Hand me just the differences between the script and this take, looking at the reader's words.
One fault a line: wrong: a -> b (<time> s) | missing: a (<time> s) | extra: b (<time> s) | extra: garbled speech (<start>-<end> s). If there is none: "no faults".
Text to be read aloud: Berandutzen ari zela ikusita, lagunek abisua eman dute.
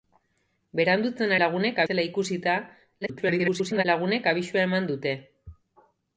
wrong: ari -> lagunek (1.4 s)
extra: garbled speech (3.0-3.8 s)